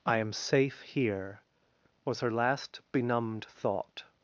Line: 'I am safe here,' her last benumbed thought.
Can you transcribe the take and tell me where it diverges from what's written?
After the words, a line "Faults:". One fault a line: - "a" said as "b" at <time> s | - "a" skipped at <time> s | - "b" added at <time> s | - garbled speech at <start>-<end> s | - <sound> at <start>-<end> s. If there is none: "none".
'I am safe here,' was her last benumbed thought.
Faults:
- "was" added at 2.0 s